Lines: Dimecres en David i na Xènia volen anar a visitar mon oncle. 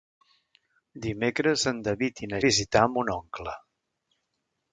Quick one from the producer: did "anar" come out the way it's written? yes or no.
no